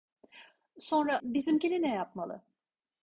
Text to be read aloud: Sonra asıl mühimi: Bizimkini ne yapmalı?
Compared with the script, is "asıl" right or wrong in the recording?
wrong